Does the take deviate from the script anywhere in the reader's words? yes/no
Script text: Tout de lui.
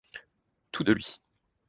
no